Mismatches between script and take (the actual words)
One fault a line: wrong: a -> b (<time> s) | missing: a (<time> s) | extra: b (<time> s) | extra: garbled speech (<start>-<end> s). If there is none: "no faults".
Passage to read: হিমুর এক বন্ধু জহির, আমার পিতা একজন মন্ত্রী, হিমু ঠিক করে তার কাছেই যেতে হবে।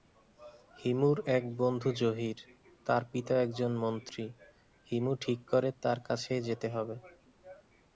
wrong: আমার -> তার (2.9 s)